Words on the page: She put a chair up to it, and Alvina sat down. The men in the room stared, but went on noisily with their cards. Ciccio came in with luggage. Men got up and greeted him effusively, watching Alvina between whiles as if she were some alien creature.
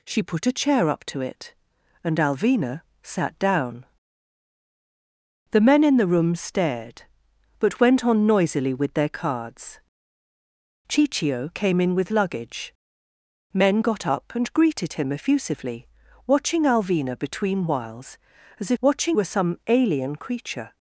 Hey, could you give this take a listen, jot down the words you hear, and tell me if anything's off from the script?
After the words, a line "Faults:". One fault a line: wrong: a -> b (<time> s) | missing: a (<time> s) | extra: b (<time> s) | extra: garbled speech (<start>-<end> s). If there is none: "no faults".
She put a chair up to it, and Alvina sat down. The men in the room stared, but went on noisily with their cards. Ciccio came in with luggage. Men got up and greeted him effusively, watching Alvina between whiles as if watching were some alien creature.
Faults:
wrong: she -> watching (18.8 s)